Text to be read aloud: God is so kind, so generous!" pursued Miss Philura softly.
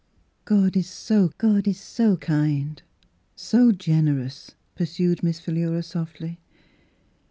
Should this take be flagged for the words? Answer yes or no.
yes